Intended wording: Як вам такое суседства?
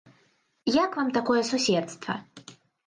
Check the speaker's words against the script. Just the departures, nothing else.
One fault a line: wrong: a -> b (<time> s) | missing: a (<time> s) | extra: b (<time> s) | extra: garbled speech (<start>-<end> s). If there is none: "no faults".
no faults